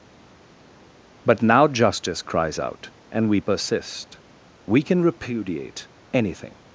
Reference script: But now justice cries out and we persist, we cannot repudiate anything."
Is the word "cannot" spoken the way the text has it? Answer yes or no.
no